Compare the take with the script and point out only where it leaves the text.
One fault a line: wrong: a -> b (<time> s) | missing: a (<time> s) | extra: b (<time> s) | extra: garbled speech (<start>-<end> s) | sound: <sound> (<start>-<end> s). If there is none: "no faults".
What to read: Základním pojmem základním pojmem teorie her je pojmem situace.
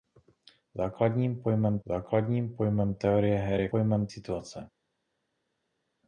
no faults